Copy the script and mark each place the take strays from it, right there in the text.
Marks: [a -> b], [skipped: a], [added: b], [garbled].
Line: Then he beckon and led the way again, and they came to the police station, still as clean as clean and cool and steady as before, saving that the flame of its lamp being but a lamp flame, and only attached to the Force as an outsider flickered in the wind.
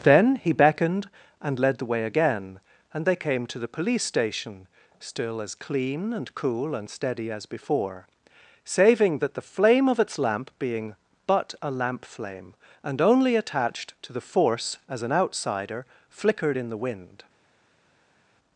Then he [beckon -> beckoned] and led the way again, and they came to the police station, still as clean [skipped: as clean] and cool and steady as before, saving that the flame of its lamp being but a lamp flame, and only attached to the Force as an outsider flickered in the wind.